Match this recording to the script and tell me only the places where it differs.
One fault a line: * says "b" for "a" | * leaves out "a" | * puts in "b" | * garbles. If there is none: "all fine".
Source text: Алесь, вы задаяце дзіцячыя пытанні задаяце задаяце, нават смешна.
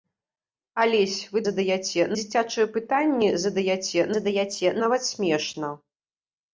all fine